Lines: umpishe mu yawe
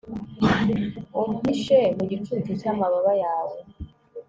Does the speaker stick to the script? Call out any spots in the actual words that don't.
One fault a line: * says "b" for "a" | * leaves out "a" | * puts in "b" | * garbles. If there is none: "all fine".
* puts in "gicucu cy'amababa"